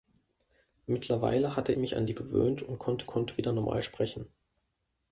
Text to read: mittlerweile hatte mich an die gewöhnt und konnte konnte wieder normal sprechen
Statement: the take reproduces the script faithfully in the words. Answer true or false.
true